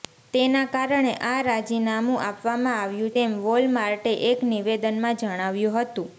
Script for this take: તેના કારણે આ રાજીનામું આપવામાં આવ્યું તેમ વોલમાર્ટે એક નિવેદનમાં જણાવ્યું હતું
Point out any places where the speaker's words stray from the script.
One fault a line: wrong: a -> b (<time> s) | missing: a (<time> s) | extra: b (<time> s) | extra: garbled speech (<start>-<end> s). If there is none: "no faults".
no faults